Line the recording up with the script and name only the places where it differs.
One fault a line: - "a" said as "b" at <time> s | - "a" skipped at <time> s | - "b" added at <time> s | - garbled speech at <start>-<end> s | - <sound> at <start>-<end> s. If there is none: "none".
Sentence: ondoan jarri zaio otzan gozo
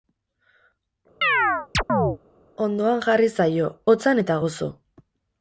- chirp at 1.2-2.2 s
- "eta" added at 4.2 s